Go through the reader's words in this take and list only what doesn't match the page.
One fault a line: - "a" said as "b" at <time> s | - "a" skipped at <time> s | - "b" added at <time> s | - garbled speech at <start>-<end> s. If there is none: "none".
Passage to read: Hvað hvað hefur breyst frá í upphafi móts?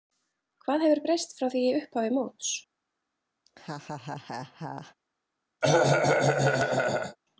- "hvað" skipped at 0.8 s
- "því" added at 1.5 s